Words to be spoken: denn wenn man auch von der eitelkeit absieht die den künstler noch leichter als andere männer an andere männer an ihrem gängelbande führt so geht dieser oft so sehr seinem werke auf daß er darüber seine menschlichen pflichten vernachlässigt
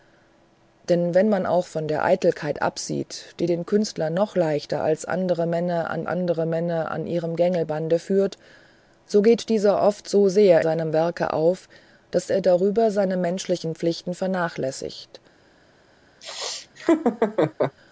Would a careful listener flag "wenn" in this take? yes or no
no